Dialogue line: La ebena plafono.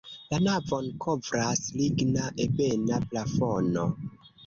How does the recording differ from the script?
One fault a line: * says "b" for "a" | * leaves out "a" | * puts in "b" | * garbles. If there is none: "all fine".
* puts in "navon kovras ligna"